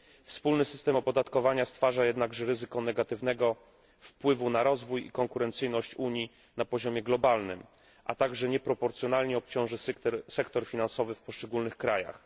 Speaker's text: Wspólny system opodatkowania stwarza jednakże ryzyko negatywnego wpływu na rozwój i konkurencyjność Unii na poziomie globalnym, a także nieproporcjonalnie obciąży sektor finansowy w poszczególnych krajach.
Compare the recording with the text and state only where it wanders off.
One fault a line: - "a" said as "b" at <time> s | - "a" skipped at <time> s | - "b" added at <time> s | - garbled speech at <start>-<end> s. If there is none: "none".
none